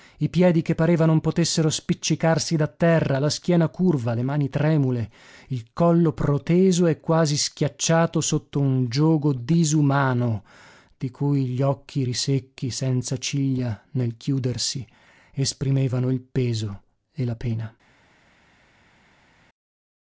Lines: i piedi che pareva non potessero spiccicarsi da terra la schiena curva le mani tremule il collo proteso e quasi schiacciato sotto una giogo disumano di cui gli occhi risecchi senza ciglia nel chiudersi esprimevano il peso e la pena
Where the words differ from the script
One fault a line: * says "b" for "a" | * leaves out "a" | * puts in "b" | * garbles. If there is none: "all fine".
* says "un" for "una"